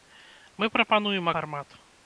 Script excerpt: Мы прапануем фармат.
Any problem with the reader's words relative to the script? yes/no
no